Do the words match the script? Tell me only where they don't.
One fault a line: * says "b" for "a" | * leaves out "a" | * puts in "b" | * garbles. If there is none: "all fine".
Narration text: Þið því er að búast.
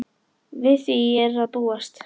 * says "Við" for "Þið"